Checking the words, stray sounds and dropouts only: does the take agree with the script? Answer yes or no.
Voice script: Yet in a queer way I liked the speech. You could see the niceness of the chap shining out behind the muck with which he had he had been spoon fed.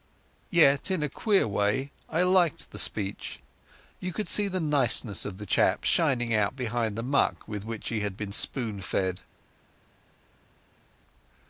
no